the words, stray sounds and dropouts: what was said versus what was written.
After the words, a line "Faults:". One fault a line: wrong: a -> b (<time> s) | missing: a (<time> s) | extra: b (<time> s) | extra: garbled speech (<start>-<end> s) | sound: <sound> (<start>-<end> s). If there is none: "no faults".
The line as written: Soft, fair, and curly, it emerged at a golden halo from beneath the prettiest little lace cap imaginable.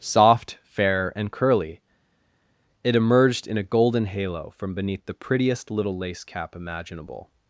Soft, fair, and curly, it emerged in a golden halo from beneath the prettiest little lace cap imaginable.
Faults:
wrong: at -> in (3.5 s)